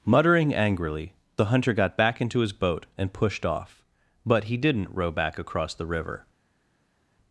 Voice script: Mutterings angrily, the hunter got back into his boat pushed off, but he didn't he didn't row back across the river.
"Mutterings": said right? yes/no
no